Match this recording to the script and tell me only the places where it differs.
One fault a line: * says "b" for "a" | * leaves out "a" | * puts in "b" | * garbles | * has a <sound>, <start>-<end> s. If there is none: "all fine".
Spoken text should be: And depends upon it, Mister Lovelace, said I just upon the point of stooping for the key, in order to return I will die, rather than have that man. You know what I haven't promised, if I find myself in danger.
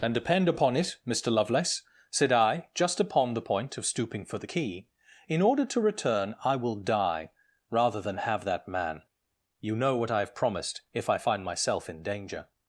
* says "depend" for "depends"
* says "have" for "haven't"